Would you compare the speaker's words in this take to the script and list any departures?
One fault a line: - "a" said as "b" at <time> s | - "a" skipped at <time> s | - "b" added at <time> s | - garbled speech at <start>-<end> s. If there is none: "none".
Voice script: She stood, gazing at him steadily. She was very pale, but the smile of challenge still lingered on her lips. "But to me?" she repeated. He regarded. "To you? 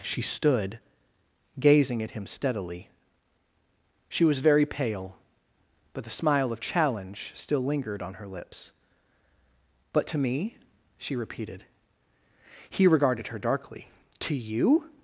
- "her darkly" added at 13.3 s